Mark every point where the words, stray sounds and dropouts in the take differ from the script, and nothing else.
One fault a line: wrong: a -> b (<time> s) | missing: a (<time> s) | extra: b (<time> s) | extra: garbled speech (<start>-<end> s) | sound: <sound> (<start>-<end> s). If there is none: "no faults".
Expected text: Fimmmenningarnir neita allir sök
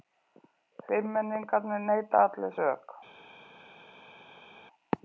no faults